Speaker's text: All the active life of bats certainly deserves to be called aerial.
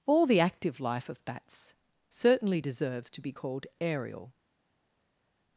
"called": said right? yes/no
yes